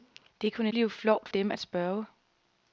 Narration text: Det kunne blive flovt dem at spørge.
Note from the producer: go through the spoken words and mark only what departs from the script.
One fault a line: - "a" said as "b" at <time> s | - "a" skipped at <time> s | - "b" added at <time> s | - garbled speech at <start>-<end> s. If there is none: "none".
none